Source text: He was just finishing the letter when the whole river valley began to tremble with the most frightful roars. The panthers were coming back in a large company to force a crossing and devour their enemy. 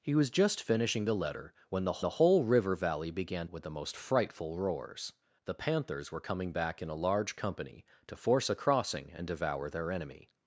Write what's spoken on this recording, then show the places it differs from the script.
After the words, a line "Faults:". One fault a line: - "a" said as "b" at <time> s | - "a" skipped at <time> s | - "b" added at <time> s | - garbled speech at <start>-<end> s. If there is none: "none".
He was just finishing the letter when the the whole river valley began with the most frightful roars. The panthers were coming back in a large company to force a crossing and devour their enemy.
Faults:
- "the" added at 2.0 s
- "to tremble" skipped at 3.5 s